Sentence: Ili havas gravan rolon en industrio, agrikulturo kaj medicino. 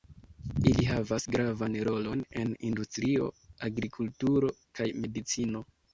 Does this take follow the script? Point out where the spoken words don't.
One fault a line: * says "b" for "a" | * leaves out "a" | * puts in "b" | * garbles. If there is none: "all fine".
all fine